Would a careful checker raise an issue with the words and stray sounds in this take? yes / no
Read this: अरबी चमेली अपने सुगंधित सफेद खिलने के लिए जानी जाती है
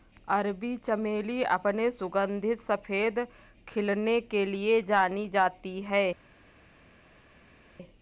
no